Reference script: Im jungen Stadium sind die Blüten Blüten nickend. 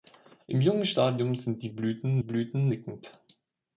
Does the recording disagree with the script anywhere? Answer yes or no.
no